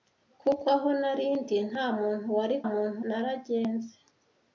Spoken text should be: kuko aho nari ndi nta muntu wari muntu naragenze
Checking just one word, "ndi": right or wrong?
right